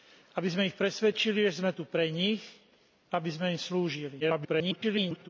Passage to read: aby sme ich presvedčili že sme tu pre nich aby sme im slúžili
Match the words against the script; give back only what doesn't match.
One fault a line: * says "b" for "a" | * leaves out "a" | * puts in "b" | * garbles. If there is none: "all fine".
* garbles